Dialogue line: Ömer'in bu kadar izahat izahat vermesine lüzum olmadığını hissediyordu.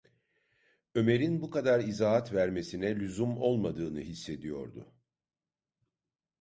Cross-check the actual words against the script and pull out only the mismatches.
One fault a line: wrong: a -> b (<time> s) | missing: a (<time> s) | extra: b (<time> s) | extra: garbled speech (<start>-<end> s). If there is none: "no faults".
missing: izahat (2.3 s)